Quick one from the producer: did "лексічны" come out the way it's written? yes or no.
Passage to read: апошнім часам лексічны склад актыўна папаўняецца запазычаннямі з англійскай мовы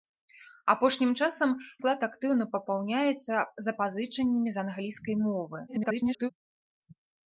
no